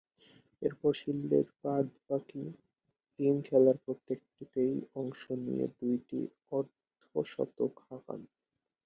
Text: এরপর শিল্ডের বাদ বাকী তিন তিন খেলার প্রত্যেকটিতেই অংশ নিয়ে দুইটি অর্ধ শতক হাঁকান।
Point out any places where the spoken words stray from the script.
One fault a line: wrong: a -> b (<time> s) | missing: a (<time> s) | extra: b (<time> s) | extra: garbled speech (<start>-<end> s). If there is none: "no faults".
missing: তিন (3.3 s)